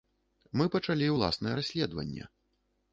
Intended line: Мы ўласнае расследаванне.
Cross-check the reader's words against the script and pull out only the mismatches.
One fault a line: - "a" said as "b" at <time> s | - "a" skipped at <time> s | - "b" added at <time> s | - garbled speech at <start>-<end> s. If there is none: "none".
- "пачалі" added at 0.8 s